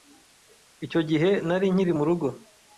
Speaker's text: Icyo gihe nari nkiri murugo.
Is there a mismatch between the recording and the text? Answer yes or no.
no